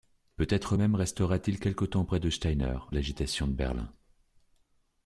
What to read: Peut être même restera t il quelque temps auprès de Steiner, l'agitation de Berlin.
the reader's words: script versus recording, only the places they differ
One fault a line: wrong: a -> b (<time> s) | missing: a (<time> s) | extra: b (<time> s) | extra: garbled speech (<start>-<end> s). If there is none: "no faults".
no faults